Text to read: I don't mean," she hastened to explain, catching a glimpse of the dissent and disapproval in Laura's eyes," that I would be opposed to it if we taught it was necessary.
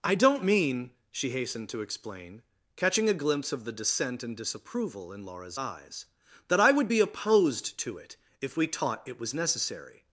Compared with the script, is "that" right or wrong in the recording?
right